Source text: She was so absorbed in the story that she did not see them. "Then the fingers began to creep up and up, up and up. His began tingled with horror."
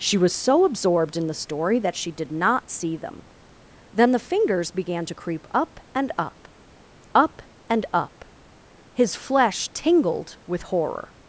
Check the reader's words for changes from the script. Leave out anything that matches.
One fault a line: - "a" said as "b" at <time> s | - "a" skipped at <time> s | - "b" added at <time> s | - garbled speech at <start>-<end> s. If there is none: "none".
- "began" said as "flesh" at 9.1 s